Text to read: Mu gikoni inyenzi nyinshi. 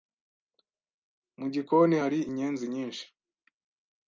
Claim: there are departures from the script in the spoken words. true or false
true